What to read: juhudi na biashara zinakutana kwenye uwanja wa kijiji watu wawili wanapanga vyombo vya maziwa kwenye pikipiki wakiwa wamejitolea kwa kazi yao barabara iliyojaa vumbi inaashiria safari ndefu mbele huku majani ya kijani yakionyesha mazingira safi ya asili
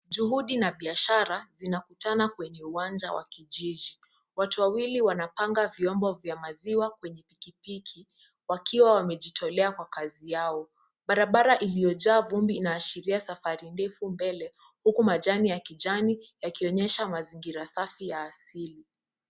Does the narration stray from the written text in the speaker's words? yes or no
no